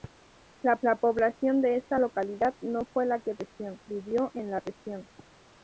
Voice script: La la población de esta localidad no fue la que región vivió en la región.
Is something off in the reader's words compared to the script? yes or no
no